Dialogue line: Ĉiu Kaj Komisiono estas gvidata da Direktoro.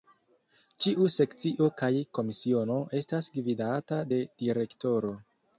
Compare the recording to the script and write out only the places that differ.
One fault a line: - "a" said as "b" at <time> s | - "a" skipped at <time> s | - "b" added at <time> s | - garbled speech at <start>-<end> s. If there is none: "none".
- "Sekcio" added at 1.1 s
- "da" said as "de" at 4.1 s